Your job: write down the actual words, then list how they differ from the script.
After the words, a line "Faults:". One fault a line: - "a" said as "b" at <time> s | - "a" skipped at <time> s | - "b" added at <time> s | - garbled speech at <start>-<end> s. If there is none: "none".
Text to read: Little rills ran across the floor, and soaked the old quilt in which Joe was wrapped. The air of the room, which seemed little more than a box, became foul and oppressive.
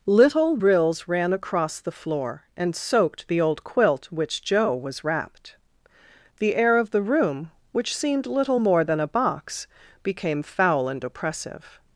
Little rills ran across the floor, and soaked the old quilt which Joe was wrapped. The air of the room, which seemed little more than a box, became foul and oppressive.
Faults:
- "in" skipped at 4.1 s